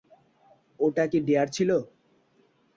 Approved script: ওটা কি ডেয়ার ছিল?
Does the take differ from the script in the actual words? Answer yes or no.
no